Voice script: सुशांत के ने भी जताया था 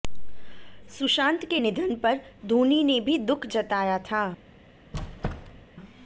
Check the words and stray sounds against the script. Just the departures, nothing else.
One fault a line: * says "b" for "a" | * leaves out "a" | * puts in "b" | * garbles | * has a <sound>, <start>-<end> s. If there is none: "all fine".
* puts in "निधन पर धोनी"
* puts in "दुख"
* has a squeak, 4.9-5.7 s